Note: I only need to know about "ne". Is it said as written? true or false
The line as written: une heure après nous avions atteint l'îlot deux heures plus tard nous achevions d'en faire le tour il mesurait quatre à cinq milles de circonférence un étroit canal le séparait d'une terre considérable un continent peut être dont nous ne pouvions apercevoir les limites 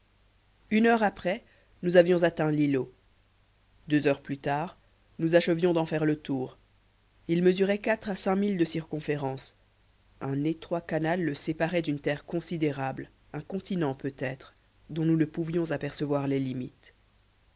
true